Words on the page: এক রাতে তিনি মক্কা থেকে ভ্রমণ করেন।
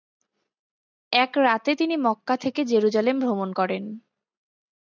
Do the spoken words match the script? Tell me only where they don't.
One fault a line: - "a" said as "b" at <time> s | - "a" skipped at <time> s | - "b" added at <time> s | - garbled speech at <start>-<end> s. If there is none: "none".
- "জেরুজালেম" added at 2.6 s